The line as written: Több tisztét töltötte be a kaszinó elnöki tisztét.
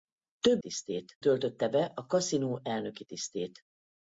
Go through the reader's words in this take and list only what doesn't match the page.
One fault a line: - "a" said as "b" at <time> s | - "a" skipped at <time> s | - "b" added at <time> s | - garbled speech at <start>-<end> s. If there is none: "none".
none